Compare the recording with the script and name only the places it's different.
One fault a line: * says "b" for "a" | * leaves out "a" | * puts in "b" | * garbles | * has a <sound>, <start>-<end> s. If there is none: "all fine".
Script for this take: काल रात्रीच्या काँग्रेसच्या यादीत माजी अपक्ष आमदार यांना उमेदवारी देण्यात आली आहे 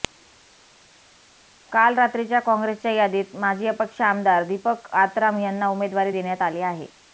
* puts in "दीपक आत्राम"